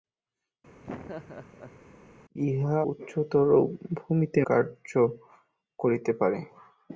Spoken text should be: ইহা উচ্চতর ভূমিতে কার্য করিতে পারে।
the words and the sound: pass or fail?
fail